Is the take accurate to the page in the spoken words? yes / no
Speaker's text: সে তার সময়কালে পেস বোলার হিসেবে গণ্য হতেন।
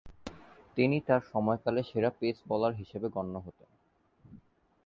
no